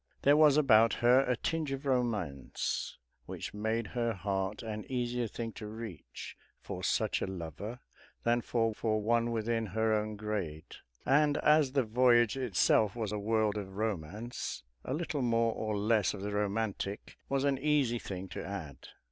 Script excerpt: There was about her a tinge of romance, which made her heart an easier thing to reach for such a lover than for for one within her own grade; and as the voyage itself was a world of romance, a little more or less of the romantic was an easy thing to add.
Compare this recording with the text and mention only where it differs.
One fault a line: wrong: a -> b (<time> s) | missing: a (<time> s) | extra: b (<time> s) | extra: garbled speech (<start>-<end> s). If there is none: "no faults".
no faults